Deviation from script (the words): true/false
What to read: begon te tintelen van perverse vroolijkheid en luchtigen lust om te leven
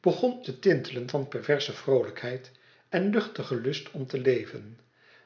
false